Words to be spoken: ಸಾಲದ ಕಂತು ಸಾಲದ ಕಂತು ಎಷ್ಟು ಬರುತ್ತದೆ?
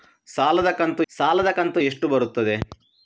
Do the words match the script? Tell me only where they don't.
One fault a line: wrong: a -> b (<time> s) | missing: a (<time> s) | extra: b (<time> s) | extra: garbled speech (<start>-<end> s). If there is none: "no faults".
no faults